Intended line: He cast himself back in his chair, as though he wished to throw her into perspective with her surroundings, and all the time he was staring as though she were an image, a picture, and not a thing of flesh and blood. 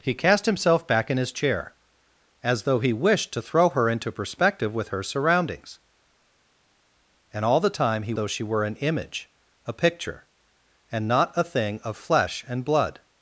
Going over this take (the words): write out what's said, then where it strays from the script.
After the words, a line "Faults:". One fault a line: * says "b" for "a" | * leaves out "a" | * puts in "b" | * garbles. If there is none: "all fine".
He cast himself back in his chair, as though he wished to throw her into perspective with her surroundings, and all the time he though she were an image, a picture, and not a thing of flesh and blood.
Faults:
* leaves out "was staring as"